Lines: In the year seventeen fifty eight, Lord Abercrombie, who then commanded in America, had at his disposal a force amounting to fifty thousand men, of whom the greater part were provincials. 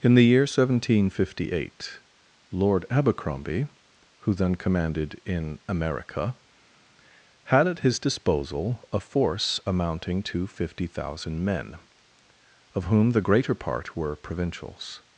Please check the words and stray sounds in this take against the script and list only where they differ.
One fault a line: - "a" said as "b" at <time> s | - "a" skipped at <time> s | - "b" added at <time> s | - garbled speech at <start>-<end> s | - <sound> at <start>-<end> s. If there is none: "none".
none